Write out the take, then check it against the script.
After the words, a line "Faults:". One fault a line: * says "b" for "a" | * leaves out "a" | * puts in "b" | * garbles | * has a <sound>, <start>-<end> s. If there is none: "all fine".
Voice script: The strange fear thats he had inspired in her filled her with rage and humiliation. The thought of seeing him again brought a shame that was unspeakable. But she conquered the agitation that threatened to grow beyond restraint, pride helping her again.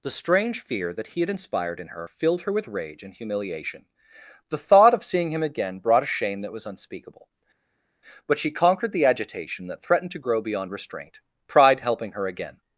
The strange fear that he had inspired in her filled her with rage and humiliation. The thought of seeing him again brought a shame that was unspeakable. But she conquered the agitation that threatened to grow beyond restraint, pride helping her again.
Faults:
* says "that" for "thats"